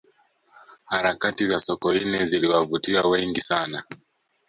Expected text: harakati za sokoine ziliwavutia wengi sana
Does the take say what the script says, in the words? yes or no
yes